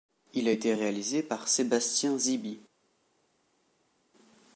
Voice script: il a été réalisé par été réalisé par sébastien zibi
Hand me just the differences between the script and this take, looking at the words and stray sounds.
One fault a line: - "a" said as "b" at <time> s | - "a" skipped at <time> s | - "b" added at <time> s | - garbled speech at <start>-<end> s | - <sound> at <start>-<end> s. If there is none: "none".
- "été réalisé par" skipped at 1.5 s